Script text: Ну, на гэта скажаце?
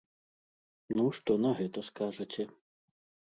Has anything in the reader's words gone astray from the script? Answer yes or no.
yes